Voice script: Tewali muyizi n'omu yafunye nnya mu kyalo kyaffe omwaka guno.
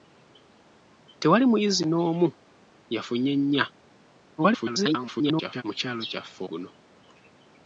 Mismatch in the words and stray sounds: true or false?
true